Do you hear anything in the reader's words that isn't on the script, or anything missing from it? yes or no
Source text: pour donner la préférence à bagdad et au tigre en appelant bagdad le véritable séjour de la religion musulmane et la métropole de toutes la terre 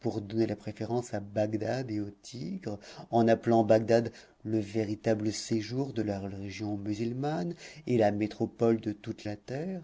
no